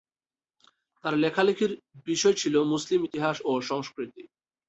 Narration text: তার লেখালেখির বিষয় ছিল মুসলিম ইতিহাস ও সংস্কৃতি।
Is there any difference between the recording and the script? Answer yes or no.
no